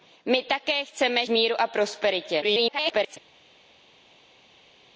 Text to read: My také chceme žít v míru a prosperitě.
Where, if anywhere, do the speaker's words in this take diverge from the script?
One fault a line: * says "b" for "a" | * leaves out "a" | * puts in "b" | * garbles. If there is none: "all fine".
* leaves out "žít"
* garbles